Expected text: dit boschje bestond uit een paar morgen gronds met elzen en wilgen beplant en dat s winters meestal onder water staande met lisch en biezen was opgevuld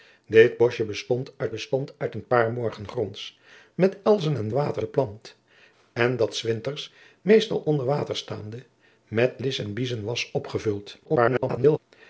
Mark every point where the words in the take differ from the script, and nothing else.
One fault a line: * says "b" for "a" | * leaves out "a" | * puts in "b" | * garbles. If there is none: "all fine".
* puts in "bestond uit"
* says "water" for "wilgen"
* garbles